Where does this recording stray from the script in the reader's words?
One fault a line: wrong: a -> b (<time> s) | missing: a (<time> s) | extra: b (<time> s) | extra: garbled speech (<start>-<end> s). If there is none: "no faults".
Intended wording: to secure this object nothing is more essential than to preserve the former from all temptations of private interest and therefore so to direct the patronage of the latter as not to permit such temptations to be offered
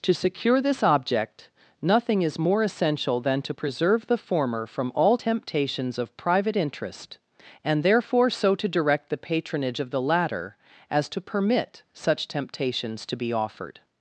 missing: not (11.1 s)